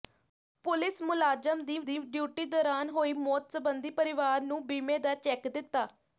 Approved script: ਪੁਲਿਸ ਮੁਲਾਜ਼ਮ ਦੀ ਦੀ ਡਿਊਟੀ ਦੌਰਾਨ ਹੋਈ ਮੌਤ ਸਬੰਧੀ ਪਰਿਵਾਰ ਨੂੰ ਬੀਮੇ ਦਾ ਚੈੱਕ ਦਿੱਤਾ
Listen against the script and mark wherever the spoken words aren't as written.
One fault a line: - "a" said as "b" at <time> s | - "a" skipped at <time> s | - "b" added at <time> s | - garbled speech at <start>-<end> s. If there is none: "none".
none